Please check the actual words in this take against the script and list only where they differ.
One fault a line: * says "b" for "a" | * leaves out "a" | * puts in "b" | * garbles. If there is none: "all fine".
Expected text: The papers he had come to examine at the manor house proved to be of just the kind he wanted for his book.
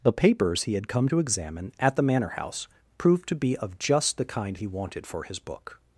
all fine